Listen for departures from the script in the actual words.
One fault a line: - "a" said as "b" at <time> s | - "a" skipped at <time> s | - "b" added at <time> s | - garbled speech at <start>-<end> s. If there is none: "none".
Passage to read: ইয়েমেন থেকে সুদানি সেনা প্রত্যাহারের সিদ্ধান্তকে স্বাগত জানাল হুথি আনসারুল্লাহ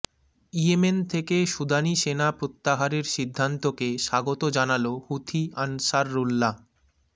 none